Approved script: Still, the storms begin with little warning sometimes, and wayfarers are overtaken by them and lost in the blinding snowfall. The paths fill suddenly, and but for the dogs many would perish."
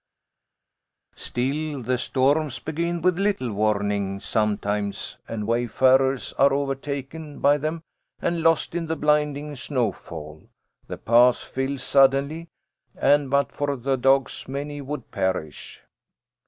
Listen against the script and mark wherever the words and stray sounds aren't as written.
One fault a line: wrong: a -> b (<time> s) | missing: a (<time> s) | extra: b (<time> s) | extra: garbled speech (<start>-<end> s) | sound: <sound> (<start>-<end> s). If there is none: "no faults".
no faults